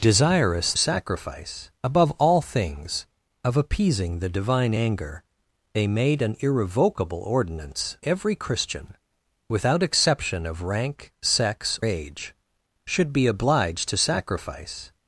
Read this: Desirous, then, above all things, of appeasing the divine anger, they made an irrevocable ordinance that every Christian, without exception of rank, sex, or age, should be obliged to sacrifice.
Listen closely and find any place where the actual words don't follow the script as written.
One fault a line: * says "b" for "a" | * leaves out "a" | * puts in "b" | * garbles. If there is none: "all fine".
* says "sacrifice" for "then"
* leaves out "that"
* leaves out "or"